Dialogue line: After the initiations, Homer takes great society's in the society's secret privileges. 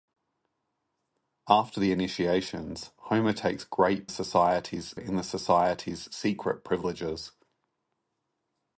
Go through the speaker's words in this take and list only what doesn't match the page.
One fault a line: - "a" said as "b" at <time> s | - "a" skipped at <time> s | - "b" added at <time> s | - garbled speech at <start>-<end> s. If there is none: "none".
none